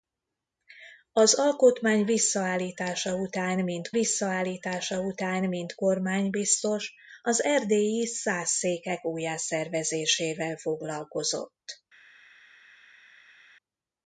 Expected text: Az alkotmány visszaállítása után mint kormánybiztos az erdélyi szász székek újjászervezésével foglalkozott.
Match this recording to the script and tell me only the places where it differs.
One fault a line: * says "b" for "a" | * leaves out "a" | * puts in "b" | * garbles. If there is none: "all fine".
* puts in "visszaállítása után mint"